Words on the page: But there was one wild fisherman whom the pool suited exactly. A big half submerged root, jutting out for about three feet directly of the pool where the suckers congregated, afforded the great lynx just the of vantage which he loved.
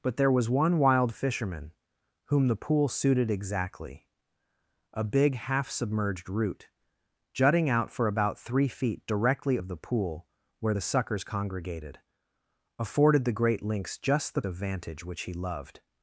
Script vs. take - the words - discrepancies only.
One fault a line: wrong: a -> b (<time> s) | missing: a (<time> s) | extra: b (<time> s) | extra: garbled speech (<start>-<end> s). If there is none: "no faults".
no faults